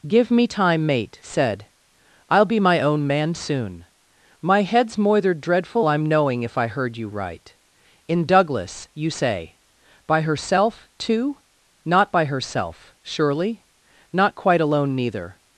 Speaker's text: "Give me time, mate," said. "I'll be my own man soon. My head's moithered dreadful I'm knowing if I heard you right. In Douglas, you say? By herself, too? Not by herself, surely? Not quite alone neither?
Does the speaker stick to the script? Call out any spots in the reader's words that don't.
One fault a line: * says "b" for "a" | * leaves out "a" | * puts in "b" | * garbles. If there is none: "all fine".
all fine